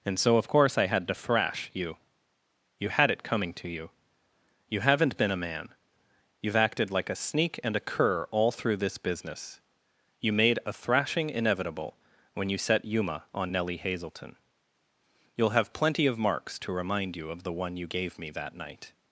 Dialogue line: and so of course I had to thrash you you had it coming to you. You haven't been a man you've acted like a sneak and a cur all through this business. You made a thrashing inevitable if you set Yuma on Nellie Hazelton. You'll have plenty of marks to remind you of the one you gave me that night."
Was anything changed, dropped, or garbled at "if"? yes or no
yes